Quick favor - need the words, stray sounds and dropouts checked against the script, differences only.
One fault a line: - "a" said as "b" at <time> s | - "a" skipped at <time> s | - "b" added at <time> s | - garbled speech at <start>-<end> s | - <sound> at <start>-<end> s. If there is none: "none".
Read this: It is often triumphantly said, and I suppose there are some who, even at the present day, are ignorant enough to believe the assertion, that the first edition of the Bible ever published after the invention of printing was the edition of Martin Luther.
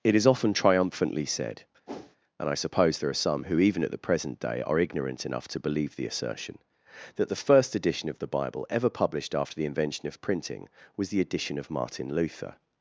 - whoosh at 1.9-2.2 s